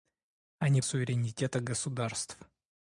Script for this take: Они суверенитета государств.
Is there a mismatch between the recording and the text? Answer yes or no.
no